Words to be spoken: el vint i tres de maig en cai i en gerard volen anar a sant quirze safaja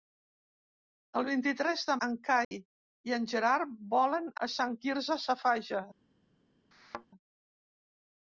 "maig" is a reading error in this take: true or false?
true